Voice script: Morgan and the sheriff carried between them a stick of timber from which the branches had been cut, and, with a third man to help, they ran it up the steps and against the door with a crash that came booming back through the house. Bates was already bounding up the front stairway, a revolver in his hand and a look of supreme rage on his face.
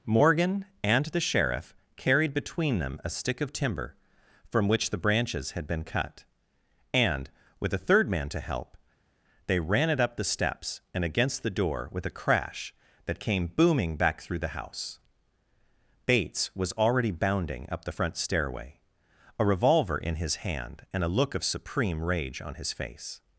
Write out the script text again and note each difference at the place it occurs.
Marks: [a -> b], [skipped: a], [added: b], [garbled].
Morgan and the sheriff carried between them a stick of timber from which the branches had been cut, and, with a third man to help, they ran it up the steps and against the door with a crash that came booming back through the house. Bates was already bounding up the front stairway, a revolver in his hand and a look of supreme rage on his face.